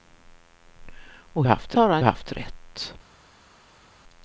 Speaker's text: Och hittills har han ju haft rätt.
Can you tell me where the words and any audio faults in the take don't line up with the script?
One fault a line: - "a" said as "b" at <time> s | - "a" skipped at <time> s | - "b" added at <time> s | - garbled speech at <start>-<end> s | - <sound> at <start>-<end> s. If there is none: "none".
- "hittills" said as "haft" at 1.5 s
- "ju" skipped at 2.0 s